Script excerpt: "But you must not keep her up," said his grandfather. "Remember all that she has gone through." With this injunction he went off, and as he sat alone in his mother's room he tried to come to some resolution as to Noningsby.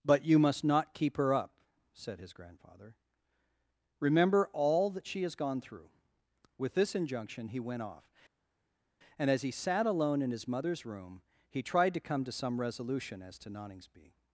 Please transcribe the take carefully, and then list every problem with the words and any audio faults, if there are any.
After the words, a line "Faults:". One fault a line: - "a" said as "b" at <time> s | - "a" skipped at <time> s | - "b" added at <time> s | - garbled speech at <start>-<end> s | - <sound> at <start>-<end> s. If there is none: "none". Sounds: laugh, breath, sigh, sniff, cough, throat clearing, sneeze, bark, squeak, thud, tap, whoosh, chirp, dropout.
"But you must not keep her up," said his grandfather. "Remember all that she has gone through." With this injunction he went off, and as he sat alone in his mother's room he tried to come to some resolution as to Noningsby.
Faults:
none